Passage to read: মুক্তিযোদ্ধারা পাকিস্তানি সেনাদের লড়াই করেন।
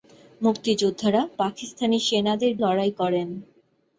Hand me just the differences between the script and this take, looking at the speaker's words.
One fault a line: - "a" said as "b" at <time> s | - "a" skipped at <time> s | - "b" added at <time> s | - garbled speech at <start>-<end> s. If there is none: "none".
none